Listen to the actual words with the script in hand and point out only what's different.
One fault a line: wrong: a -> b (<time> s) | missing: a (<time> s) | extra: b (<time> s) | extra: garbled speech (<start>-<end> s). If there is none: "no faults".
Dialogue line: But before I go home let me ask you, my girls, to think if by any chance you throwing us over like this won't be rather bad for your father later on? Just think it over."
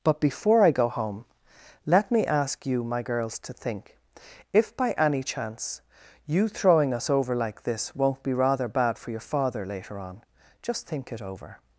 no faults